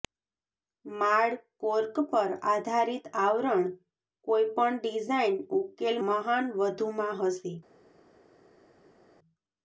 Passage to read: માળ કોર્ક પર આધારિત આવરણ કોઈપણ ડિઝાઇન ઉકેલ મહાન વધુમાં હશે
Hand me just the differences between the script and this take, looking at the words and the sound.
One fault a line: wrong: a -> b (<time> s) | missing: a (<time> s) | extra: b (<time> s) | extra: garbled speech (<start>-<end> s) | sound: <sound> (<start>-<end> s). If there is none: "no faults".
no faults